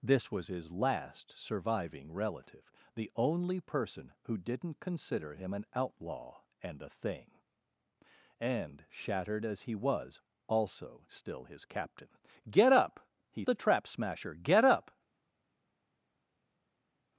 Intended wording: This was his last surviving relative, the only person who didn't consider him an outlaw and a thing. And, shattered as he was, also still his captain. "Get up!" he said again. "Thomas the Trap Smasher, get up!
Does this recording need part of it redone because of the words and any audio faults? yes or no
yes